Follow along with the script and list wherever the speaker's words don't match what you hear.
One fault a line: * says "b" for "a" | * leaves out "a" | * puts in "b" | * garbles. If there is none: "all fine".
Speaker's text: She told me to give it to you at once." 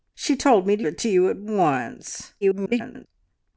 * leaves out "give"
* garbles